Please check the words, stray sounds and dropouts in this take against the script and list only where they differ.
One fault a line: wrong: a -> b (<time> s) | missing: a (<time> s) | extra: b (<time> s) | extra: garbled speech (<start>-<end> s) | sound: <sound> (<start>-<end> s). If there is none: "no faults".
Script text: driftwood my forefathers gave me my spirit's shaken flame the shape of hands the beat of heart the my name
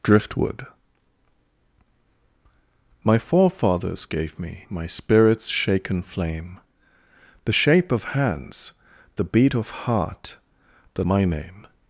no faults